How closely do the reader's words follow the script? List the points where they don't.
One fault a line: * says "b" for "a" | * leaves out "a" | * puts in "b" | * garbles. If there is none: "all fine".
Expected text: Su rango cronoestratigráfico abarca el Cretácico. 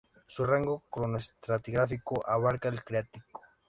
all fine